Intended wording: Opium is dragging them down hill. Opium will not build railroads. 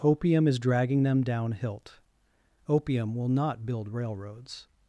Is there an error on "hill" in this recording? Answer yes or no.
yes